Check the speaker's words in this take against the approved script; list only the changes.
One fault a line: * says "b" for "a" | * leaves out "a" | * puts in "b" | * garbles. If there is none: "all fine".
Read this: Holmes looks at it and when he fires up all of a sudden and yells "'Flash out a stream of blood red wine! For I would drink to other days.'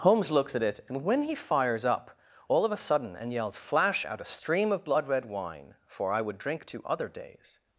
all fine